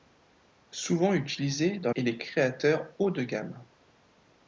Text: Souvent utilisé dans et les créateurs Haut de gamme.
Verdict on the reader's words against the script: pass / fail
pass